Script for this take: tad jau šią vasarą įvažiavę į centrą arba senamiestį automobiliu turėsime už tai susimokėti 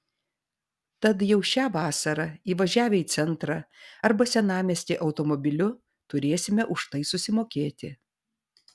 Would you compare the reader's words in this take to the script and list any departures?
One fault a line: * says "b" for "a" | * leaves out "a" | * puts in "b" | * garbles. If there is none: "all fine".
all fine